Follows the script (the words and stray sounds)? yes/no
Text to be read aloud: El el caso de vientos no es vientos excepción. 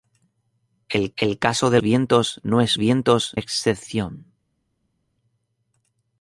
yes